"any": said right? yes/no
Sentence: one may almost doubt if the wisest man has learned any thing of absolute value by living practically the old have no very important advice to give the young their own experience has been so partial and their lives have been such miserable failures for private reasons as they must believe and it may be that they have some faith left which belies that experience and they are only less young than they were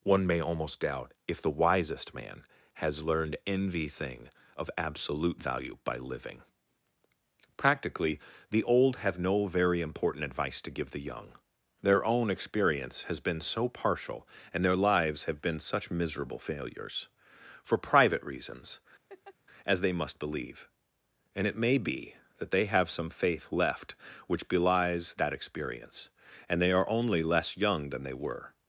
no